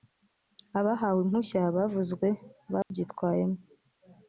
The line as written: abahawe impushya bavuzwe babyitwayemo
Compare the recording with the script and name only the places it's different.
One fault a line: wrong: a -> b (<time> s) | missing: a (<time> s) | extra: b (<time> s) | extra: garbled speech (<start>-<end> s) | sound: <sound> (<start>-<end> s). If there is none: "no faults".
sound: dropout (2.8-2.9 s)